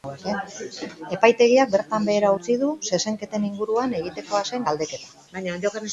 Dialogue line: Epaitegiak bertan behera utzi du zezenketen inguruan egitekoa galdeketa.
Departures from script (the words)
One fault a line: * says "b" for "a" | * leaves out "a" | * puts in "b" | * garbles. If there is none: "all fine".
* puts in "zen"